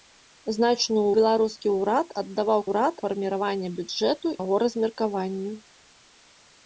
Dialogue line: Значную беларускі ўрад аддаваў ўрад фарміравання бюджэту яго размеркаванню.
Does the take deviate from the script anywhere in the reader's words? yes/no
no